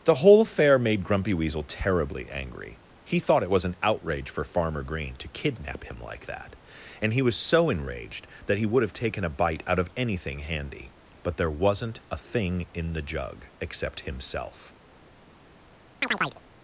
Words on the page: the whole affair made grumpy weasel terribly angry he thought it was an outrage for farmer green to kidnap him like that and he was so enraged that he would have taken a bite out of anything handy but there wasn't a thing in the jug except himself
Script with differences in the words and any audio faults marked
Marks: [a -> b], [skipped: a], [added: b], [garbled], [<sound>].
the whole affair made grumpy weasel terribly angry he thought it was an outrage for farmer green to kidnap him like that and he was so enraged that he would have taken a bite out of anything handy but there wasn't a thing in the jug except himself [chirp]